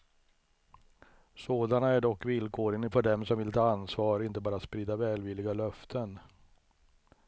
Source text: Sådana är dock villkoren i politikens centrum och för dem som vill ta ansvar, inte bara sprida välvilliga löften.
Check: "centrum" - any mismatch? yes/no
yes